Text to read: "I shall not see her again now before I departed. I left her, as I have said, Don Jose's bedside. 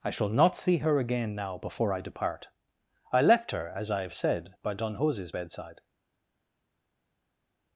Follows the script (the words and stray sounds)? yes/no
no